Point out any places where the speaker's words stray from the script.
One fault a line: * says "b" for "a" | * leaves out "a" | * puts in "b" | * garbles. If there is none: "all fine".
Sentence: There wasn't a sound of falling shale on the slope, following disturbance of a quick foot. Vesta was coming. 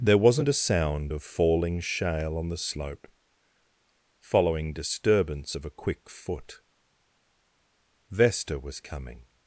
all fine